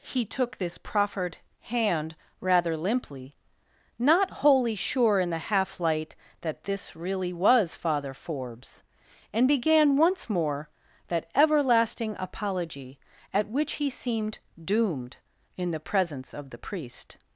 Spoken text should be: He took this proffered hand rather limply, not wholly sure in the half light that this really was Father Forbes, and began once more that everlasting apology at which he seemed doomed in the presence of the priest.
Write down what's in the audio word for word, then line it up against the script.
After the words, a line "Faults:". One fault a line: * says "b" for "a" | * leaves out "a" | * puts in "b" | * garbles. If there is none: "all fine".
He took this proffered hand rather limply, not wholly sure in the half light that this really was Father Forbes, and began once more that everlasting apology at which he seemed doomed in the presence of the priest.
Faults:
all fine